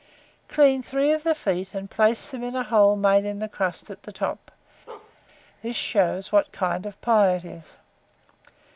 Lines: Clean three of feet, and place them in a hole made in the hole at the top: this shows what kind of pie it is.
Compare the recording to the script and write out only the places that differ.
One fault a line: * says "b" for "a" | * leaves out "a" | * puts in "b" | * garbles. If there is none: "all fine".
* puts in "the"
* says "crust" for "hole"